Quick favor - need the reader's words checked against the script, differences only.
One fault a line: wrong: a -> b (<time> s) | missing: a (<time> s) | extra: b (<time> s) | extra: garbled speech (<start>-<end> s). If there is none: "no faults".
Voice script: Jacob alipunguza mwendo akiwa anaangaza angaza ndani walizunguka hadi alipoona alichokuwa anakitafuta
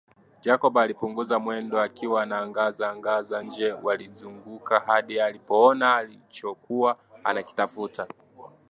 wrong: ndani -> nje (3.4 s)